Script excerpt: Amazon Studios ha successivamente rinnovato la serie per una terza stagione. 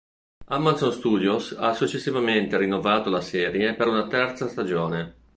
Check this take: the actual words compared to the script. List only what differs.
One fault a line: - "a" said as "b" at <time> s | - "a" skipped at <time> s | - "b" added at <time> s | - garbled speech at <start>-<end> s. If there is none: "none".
none